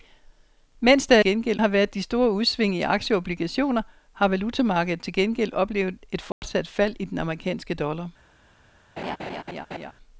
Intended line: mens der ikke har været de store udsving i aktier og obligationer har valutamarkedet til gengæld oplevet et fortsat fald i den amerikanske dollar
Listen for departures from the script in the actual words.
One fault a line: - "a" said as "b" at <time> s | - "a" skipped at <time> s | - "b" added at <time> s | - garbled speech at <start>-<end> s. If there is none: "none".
- "ikke" said as "gengæld" at 1.2 s